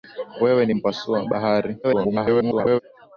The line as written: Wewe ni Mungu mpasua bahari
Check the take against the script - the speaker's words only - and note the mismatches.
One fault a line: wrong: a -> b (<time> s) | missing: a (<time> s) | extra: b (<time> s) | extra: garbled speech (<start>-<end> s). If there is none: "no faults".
missing: Mungu (0.7 s)
extra: garbled speech (1.8-2.8 s)